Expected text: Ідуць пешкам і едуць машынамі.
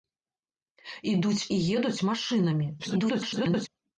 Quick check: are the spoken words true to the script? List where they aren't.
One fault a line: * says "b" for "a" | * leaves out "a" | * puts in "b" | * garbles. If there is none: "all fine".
* leaves out "пешкам"
* garbles